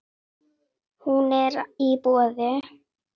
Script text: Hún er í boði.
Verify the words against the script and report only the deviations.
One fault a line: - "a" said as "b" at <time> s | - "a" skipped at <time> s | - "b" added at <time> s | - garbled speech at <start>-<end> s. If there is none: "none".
none